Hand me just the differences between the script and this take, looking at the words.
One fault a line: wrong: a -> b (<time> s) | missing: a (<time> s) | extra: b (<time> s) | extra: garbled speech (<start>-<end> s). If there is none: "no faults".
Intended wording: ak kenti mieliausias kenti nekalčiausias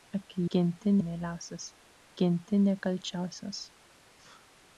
no faults